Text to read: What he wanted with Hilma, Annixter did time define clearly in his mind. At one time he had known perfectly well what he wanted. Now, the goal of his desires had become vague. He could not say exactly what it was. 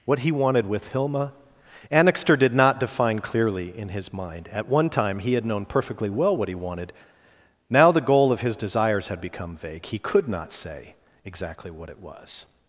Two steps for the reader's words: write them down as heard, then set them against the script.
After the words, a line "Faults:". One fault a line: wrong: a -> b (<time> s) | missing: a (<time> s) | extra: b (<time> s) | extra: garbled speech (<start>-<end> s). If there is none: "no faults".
What he wanted with Hilma, Annixter did not define clearly in his mind. At one time he had known perfectly well what he wanted. Now, the goal of his desires had become vague. He could not say exactly what it was.
Faults:
wrong: time -> not (2.5 s)